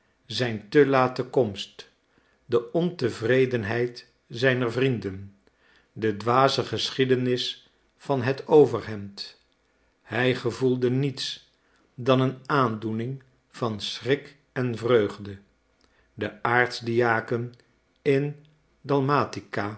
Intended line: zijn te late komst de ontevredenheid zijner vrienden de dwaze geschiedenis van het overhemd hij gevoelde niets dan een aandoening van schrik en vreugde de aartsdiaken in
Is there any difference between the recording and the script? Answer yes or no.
no